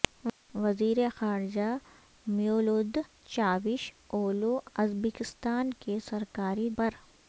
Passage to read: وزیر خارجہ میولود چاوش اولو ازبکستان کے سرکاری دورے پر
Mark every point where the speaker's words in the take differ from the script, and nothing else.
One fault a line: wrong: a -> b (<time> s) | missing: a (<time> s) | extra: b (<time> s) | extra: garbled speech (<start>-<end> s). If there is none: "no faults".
missing: دورے (6.7 s)